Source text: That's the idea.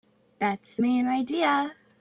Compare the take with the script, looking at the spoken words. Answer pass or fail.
fail